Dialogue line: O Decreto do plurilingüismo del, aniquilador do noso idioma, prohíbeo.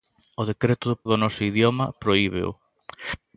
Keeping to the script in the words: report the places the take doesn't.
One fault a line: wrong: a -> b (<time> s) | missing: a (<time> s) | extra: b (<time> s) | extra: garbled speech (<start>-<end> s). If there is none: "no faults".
missing: plurilingüismo del aniquilador (1.0 s)